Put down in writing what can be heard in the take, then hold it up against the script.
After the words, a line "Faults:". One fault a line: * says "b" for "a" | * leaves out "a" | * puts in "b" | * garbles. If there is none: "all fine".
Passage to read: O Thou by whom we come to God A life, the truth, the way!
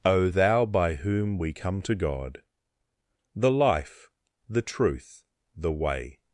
O Thou by whom we come to God The life, the truth, the way!
Faults:
* says "The" for "A"